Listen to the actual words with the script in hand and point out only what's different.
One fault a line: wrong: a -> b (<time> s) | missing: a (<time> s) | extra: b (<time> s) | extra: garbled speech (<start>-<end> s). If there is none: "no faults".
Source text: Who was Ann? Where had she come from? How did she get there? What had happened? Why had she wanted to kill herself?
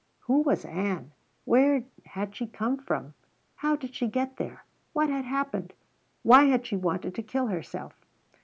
no faults